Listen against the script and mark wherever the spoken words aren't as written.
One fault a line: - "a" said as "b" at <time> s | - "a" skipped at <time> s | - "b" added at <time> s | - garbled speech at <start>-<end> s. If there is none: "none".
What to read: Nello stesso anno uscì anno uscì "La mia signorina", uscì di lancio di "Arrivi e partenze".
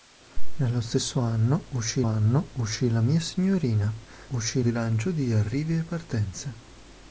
none